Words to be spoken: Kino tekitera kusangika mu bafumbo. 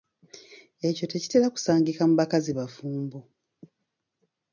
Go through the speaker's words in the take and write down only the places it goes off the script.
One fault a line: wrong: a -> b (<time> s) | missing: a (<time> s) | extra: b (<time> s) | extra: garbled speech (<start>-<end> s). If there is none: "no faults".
wrong: Kino -> Ekyo (0.9 s)
extra: bakazi (2.2 s)